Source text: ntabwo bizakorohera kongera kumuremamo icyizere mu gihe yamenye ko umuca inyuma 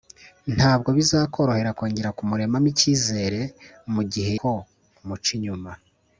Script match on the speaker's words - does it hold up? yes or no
no